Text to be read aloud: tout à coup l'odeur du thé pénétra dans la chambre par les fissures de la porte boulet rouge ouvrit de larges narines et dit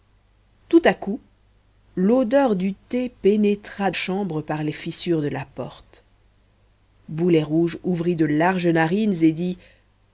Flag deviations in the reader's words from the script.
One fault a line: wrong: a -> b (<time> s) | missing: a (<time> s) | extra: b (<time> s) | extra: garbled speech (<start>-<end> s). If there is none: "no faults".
missing: dans la (3.9 s)